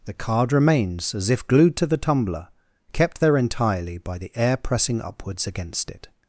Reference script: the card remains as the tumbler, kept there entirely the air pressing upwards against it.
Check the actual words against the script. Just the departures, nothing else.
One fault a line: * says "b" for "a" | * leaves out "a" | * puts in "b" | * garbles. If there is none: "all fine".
* puts in "if glued to"
* puts in "by"